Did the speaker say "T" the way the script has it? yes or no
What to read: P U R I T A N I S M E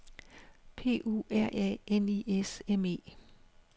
no